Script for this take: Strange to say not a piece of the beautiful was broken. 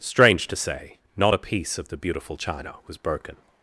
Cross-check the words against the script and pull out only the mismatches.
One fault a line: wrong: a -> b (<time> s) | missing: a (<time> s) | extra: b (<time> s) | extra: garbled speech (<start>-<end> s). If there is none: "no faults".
extra: china (2.4 s)